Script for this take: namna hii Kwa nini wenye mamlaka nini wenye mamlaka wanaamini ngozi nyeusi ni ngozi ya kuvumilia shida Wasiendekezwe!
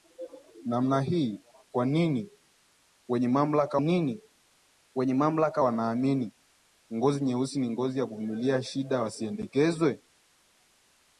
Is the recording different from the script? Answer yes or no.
no